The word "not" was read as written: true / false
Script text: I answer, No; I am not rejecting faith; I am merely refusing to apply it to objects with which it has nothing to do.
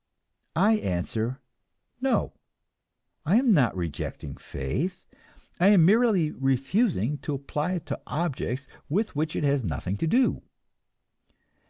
true